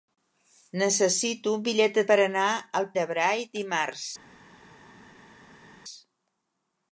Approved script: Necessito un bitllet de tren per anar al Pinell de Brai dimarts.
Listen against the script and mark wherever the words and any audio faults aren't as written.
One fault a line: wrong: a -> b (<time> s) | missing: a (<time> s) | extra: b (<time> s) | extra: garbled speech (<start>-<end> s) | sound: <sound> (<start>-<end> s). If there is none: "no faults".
missing: tren (2.0 s)
missing: Pinell (2.9 s)